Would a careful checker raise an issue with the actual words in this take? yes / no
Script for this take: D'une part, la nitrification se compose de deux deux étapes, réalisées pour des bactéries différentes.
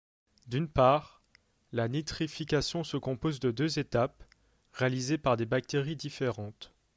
yes